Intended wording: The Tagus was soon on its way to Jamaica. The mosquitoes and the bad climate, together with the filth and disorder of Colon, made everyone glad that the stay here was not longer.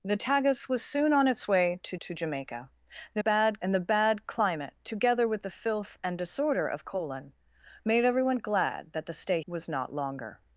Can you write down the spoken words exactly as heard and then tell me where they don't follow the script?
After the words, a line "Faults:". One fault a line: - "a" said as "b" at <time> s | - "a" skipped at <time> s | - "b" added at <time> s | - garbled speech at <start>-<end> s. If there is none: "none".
The Tagus was soon on its way to to Jamaica. The bad and the bad climate, together with the filth and disorder of Colon, made everyone glad that the stay was not longer.
Faults:
- "to" added at 2.0 s
- "mosquitoes" said as "bad" at 3.2 s
- "here" skipped at 9.4 s